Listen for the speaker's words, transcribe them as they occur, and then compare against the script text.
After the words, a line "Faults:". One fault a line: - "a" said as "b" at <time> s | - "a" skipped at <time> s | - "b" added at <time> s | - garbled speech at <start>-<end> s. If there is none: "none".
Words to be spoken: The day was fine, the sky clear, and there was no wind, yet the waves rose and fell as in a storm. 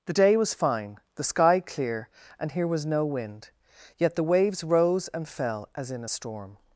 The day was fine, the sky clear, and here was no wind, yet the waves rose and fell as in a storm.
Faults:
- "there" said as "here" at 2.5 s